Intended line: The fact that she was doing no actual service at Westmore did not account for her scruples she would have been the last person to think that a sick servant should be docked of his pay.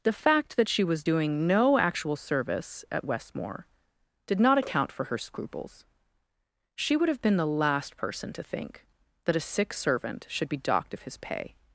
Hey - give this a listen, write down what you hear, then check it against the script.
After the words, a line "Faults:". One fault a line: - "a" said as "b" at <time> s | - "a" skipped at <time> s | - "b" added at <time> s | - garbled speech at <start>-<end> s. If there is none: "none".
The fact that she was doing no actual service at Westmore did not account for her scruples she would have been the last person to think that a sick servant should be docked of his pay.
Faults:
none